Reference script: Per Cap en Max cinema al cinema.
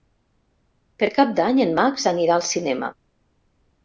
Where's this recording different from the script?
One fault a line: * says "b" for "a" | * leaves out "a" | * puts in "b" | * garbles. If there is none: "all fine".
* puts in "d'Any"
* says "anirà" for "cinema"